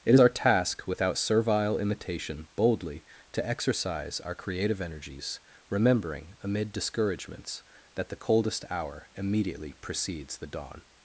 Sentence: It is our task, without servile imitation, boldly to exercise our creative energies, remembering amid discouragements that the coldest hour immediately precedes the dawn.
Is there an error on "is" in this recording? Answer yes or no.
yes